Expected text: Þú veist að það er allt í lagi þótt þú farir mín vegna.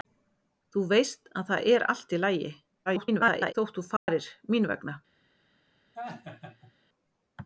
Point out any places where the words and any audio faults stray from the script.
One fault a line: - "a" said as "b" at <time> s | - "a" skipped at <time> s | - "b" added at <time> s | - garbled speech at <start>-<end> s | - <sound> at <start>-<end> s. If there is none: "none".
- garbled speech at 2.9-3.5 s
- dropout at 4.0-4.1 s
- laugh at 5.9-6.7 s